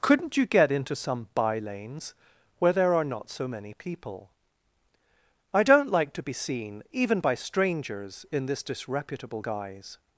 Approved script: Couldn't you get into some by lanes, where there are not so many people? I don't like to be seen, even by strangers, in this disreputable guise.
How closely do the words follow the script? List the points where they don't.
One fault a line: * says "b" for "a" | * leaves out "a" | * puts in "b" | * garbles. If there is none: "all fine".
all fine